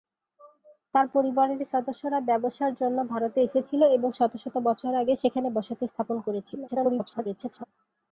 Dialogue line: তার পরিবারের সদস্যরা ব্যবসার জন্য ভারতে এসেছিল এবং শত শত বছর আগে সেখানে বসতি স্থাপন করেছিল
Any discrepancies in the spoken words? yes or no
yes